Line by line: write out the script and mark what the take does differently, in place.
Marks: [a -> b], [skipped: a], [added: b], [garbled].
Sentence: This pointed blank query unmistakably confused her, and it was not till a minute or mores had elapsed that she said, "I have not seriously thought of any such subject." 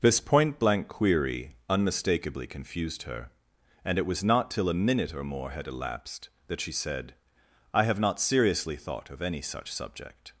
This [pointed -> point] blank query unmistakably confused her, and it was not till a minute or [mores -> more] had elapsed that she said, "I have not seriously thought of any such subject."